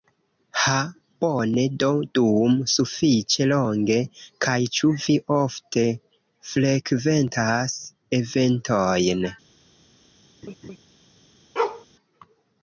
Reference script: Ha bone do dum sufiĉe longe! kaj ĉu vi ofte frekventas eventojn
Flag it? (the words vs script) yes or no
no